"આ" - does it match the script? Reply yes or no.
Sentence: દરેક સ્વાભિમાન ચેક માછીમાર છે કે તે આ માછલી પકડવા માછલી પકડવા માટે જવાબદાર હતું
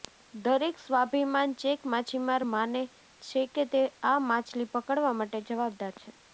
yes